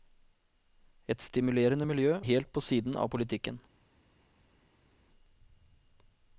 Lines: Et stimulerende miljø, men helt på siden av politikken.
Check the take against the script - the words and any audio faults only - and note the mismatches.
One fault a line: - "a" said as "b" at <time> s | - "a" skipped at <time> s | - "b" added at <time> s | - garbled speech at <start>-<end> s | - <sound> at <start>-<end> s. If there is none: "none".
- "men" skipped at 2.2 s